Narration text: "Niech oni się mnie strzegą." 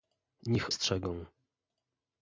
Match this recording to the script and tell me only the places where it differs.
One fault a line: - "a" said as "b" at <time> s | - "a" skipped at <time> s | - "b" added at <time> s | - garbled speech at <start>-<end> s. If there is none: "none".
- "oni się mnie" skipped at 0.8 s